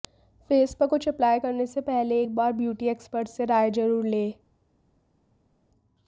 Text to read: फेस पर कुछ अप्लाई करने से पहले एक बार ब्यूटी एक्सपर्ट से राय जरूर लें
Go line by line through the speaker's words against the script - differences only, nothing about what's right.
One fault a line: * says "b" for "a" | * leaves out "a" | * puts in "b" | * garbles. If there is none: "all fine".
all fine